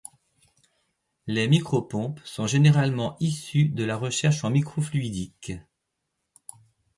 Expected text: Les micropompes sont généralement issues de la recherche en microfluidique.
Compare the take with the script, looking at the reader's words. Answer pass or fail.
pass